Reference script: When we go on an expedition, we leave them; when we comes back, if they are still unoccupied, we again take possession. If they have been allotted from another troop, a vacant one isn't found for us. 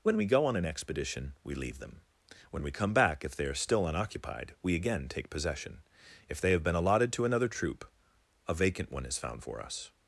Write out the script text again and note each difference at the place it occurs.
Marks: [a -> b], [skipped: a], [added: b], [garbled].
When we go on an expedition, we leave them; when we [comes -> come] back, if they are still unoccupied, we again take possession. If they have been allotted [from -> to] another troop, a vacant one [isn't -> is] found for us.